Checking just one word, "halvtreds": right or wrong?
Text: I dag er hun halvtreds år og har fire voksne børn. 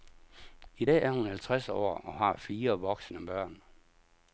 right